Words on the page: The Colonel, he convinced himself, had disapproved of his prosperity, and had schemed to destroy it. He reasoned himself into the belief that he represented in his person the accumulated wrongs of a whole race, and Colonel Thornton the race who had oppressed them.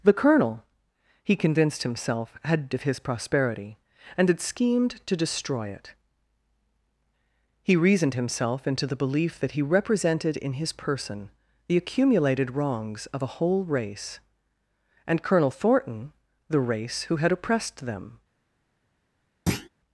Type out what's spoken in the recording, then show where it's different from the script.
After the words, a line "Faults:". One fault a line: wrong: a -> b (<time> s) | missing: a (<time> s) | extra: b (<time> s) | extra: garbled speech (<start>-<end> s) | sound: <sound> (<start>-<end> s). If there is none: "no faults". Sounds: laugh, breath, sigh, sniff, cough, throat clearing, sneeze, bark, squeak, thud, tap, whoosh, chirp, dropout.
The Colonel, he convinced himself, had of his prosperity, and had schemed to destroy it. He reasoned himself into the belief that he represented in his person the accumulated wrongs of a whole race, and Colonel Thornton the race who had oppressed them.
Faults:
missing: disapproved (2.7 s)
sound: thud (19.5-19.7 s)